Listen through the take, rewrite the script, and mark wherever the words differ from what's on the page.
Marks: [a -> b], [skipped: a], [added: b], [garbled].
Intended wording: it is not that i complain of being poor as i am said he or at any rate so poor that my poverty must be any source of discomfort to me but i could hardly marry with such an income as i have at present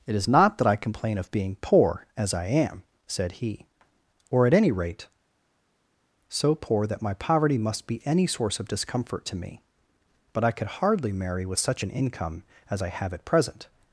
it is not that i complain of being poor as i am said he or at any rate so poor that my poverty must be any source of discomfort to me but i could hardly marry with such an income as i have at present